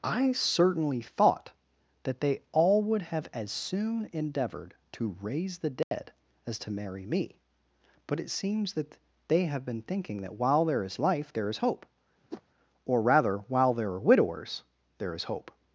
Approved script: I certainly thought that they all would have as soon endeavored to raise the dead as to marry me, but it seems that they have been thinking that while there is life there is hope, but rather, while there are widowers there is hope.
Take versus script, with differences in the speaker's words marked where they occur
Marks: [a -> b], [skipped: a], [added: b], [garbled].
I certainly thought that they all would have as soon endeavored to raise the dead as to marry me, but it seems that they have been thinking that while there is life there is hope, [but -> or] rather, while there are widowers there is hope.